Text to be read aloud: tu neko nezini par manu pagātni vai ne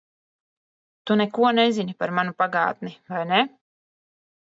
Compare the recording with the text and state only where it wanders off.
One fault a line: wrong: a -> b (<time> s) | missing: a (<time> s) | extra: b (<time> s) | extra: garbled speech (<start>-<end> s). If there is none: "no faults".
no faults